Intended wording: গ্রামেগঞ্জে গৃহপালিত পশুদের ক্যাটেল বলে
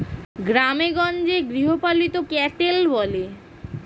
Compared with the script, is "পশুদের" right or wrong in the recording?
wrong